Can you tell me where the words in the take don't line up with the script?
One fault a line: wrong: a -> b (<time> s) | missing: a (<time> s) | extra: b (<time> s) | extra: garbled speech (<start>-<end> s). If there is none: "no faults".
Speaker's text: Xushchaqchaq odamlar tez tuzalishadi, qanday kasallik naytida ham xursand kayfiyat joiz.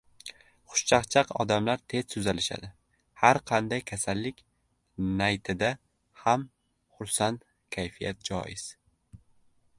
extra: har (3.2 s)